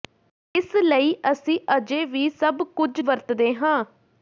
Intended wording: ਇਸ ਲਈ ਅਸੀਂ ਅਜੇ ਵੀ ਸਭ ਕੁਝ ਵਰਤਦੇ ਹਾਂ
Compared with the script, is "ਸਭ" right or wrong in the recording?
right